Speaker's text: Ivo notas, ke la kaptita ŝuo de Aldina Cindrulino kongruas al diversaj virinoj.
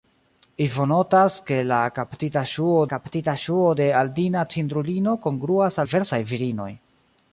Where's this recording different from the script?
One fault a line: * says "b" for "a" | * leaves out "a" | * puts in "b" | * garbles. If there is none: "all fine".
* puts in "kaptita ŝuo"
* leaves out "al"